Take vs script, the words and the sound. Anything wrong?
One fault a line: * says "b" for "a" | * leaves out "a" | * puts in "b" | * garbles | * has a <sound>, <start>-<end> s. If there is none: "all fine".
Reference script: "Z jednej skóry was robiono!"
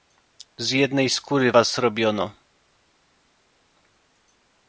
all fine